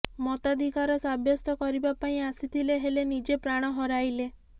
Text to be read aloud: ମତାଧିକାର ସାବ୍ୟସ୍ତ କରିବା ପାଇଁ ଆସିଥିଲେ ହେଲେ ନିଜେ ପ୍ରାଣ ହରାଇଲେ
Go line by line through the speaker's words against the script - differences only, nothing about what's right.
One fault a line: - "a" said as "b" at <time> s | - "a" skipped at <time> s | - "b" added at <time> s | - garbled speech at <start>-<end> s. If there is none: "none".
none